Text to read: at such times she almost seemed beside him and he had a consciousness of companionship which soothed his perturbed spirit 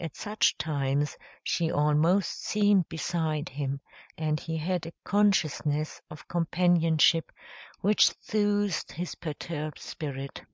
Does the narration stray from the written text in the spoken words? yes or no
no